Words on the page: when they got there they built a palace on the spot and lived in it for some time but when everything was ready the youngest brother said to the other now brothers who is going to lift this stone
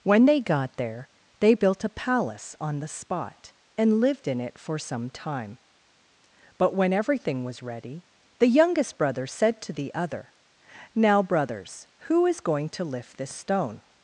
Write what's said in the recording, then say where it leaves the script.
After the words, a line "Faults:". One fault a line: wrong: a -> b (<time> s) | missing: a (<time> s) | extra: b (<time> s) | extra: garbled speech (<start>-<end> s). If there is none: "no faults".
when they got there they built a palace on the spot and lived in it for some time but when everything was ready the youngest brother said to the other now brothers who is going to lift this stone
Faults:
no faults